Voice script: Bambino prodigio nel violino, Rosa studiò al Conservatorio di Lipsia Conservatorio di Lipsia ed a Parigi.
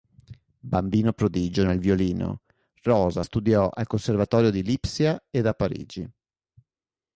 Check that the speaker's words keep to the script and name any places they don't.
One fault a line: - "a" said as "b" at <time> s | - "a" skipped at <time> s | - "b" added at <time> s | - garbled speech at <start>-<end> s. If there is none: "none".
- "Conservatorio di Lipsia" skipped at 5.3 s